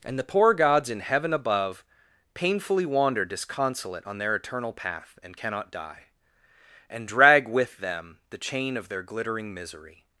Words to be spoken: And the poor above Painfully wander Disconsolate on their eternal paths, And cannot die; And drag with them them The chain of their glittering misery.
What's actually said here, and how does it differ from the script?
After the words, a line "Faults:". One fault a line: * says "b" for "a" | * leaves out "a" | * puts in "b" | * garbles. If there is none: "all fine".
And the poor gods in heaven above Painfully wander Disconsolate on their eternal path, And cannot die; And drag with them The chain of their glittering misery.
Faults:
* puts in "gods in heaven"
* says "path" for "paths"
* leaves out "them"